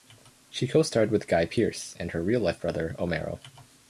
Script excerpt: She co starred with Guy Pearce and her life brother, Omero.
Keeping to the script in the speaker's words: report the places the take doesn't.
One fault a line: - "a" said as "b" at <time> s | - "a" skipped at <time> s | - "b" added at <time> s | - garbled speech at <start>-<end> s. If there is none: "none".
- "real" added at 2.2 s